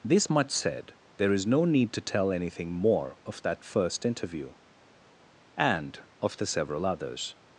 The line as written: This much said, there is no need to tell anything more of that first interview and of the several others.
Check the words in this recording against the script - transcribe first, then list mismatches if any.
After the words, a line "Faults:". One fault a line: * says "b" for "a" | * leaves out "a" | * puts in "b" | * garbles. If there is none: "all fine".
This much said, there is no need to tell anything more of that first interview and of the several others.
Faults:
all fine